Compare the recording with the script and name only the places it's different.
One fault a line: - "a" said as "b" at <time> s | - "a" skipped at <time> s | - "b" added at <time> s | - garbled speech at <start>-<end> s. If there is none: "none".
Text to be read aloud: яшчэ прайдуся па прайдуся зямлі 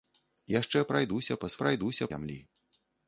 none